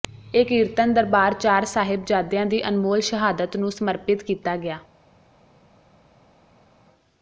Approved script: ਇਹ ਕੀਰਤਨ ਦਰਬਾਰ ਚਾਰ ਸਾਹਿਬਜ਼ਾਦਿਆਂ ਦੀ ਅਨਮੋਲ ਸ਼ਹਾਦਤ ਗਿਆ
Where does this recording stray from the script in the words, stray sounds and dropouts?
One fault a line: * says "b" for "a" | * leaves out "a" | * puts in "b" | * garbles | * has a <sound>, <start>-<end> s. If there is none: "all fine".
* puts in "ਨੂੰ ਸਮਰਪਿਤ ਕੀਤਾ"